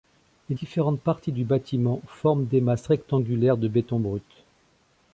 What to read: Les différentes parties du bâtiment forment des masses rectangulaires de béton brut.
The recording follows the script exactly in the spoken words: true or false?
true